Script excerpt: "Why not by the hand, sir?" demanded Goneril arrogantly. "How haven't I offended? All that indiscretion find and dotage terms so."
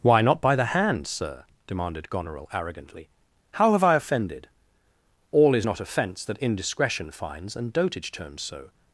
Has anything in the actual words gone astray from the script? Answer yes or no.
yes